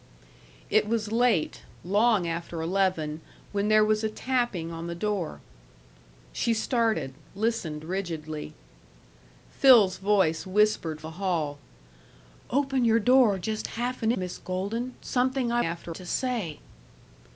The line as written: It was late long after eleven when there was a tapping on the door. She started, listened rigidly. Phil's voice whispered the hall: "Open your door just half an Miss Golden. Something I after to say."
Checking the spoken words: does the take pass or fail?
pass